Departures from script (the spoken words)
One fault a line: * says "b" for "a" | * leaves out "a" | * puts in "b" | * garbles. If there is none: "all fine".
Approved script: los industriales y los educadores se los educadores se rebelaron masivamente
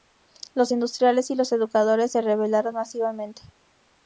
* leaves out "los educadores se"